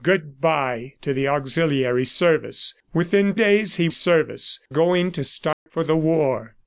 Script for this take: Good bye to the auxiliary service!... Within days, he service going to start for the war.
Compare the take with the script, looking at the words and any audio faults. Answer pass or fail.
fail